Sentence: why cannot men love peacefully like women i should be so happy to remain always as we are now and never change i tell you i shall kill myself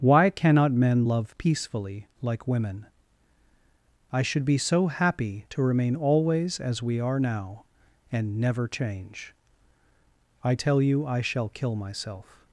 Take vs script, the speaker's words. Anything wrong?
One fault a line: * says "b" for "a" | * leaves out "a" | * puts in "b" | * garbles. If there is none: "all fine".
all fine